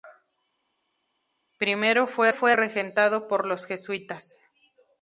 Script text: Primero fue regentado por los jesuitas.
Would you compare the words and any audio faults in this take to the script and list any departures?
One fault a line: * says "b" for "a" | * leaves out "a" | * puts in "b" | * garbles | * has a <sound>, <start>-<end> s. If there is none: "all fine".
* puts in "fue"